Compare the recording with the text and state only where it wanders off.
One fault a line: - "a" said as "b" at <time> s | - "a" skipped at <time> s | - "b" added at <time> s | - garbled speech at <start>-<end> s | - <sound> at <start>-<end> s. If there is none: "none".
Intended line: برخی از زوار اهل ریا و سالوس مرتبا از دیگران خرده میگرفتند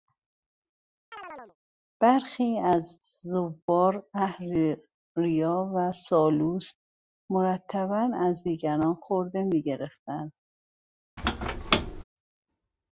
- chirp at 1.1-1.6 s
- squeak at 11.2-12.0 s